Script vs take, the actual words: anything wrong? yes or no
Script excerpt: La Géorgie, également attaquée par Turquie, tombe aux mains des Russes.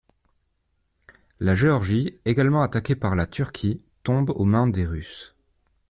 yes